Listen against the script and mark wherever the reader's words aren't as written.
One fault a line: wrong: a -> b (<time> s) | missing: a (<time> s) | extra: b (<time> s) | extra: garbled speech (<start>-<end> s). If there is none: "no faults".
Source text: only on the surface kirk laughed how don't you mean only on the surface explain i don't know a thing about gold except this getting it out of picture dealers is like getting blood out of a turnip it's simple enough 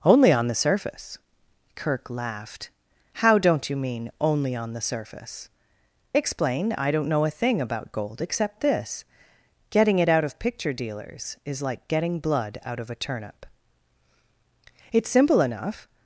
no faults